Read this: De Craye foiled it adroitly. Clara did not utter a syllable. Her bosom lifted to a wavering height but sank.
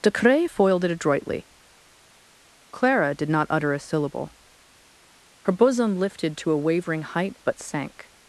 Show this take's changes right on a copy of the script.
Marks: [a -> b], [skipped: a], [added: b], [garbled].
De Craye foiled it adroitly. Clara did not utter a syllable. Her bosom lifted to a wavering height but sank.